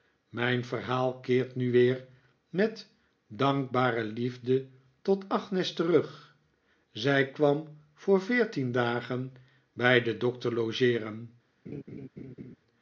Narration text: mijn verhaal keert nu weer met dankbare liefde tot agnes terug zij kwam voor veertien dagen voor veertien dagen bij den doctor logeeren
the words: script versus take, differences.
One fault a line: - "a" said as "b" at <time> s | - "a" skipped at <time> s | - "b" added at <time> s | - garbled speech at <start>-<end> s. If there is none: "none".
- "voor veertien dagen" skipped at 9.3 s